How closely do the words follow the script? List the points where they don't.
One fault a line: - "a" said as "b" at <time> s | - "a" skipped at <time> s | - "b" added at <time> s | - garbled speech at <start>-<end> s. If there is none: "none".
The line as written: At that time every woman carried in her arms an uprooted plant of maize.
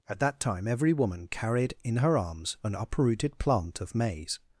none